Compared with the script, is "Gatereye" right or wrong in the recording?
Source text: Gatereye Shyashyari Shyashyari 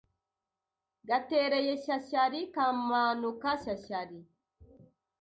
right